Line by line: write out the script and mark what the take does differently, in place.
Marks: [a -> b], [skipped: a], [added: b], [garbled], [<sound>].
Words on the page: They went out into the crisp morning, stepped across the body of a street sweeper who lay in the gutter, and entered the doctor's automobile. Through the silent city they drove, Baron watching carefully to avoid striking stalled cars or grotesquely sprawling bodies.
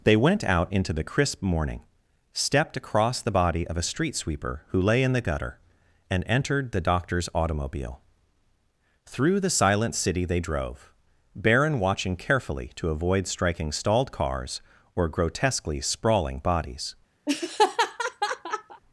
They went out into the crisp morning, stepped across the body of a street sweeper who lay in the gutter, and entered the doctor's automobile. Through the silent city they drove, Baron watching carefully to avoid striking stalled cars or grotesquely sprawling bodies. [laugh]